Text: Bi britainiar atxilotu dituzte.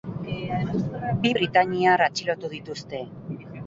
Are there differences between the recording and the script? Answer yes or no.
no